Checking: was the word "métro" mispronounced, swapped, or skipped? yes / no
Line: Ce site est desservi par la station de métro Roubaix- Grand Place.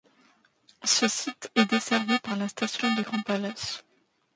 yes